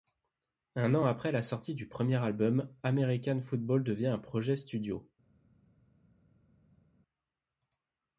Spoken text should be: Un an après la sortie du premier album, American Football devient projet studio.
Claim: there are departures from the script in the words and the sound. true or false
true